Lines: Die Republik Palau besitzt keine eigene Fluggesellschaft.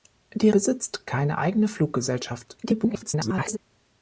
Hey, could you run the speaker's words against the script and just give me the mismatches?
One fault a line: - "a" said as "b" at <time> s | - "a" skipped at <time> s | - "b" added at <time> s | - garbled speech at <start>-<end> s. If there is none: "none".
- "Republik Palau" skipped at 0.5 s
- garbled speech at 2.6-3.6 s